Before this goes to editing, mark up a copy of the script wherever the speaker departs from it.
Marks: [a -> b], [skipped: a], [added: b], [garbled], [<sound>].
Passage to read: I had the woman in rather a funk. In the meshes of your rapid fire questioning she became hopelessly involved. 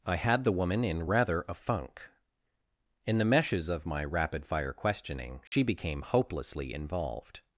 I had the woman in rather a funk. In the meshes of [your -> my] rapid fire questioning she [dropout] became hopelessly involved.